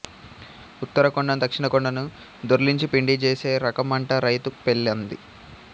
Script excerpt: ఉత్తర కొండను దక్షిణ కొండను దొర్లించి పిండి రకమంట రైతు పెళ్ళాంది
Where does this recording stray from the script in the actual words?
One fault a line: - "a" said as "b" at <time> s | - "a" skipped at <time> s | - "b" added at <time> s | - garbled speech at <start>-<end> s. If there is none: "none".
- "జేసే" added at 3.2 s